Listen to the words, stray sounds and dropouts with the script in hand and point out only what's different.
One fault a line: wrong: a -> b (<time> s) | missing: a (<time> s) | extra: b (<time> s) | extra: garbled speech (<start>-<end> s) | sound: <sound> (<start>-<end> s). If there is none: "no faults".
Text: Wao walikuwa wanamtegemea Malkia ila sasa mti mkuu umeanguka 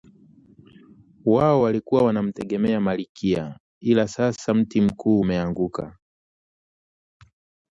no faults